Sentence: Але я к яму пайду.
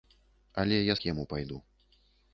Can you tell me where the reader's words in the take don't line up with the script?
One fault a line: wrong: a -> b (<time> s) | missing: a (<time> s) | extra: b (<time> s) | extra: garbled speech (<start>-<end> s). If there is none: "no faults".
no faults